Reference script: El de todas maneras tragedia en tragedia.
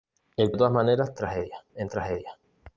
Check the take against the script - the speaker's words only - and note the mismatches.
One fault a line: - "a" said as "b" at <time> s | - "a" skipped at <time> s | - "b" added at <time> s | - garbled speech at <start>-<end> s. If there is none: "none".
none